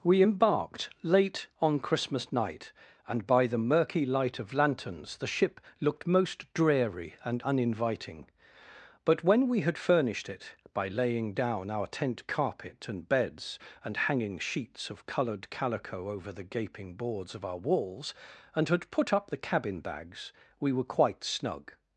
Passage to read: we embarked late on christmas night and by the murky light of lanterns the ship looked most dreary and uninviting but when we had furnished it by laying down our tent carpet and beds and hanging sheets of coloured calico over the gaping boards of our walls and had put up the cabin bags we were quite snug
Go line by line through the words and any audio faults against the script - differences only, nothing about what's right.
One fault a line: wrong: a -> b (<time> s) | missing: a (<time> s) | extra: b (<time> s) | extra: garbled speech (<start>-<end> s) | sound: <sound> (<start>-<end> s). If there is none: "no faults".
no faults